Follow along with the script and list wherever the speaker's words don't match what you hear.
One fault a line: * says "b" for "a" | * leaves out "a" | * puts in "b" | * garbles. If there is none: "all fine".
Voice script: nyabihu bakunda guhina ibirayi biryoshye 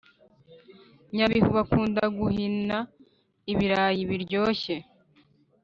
all fine